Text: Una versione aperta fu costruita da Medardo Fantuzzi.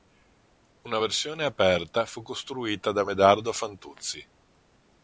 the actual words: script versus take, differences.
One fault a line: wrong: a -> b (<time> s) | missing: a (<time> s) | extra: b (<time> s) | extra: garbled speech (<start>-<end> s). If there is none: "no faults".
no faults